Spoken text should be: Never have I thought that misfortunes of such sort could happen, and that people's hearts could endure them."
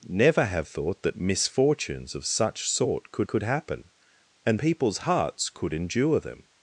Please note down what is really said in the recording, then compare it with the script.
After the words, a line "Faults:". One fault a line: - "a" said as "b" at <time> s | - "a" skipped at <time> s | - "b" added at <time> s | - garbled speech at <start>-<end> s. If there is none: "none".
Never have thought that misfortunes of such sort could could happen, and people's hearts could endure them."
Faults:
- "I" skipped at 0.7 s
- "could" added at 3.3 s
- "that" skipped at 4.6 s